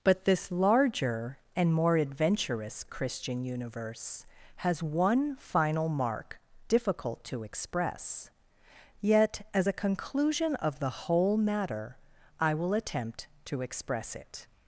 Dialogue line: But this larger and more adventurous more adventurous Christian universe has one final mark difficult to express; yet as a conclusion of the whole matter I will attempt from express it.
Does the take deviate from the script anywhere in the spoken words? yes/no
yes